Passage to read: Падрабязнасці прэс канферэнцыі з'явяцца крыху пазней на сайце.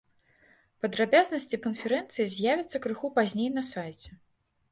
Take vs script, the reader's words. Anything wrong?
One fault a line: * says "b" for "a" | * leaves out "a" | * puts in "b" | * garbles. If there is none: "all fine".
* leaves out "прэс"